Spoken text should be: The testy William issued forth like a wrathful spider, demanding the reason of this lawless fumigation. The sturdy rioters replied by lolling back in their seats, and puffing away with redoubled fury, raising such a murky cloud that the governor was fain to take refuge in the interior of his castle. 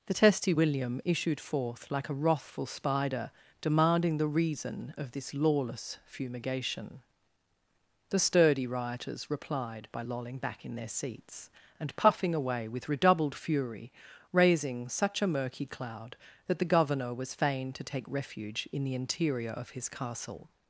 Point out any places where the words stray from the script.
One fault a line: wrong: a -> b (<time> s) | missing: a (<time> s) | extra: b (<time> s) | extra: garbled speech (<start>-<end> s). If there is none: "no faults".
no faults